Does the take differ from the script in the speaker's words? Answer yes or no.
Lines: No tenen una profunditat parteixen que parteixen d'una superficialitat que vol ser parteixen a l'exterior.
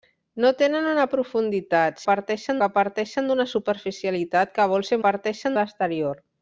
no